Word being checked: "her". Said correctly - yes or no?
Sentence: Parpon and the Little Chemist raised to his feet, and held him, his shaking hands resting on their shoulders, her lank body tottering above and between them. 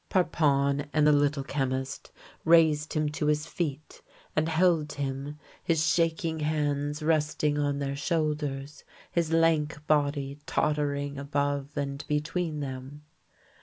no